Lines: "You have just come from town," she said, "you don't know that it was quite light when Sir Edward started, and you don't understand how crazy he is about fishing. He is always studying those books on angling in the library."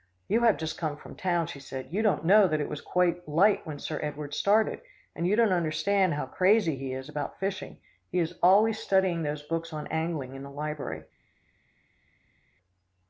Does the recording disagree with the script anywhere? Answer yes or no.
no